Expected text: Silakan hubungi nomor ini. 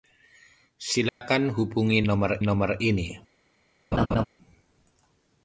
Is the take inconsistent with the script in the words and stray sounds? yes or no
yes